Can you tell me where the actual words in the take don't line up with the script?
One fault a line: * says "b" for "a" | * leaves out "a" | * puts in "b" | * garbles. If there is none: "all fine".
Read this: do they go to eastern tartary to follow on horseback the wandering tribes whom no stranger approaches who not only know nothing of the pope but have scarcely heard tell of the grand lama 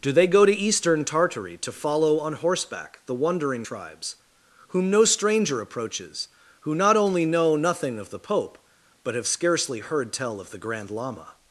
all fine